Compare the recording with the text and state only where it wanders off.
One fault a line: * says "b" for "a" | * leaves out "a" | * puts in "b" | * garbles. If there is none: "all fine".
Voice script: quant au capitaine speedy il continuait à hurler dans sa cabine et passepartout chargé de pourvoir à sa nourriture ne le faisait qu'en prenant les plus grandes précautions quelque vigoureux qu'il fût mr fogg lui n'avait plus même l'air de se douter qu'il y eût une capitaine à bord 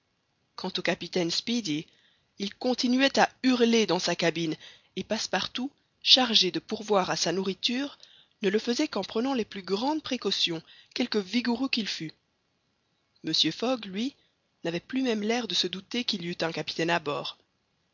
* says "un" for "une"